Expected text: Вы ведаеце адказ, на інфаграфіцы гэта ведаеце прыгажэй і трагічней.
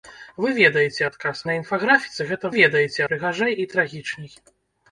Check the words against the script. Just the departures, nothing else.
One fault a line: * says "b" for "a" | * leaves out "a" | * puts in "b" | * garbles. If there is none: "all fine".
all fine